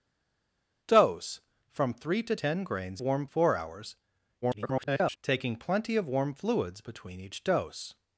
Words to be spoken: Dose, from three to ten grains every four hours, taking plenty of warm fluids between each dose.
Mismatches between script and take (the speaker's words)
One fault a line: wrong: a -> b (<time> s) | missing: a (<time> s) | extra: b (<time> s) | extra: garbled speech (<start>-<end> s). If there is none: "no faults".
wrong: every -> warm (3.0 s)
extra: garbled speech (4.4-5.2 s)